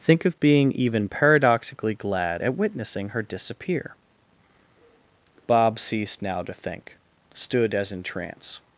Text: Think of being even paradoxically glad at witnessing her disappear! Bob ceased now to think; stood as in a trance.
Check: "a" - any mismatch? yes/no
yes